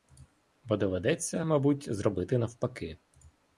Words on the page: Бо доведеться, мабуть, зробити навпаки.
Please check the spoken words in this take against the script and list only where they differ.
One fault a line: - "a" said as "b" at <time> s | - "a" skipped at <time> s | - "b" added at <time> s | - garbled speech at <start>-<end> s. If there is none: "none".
none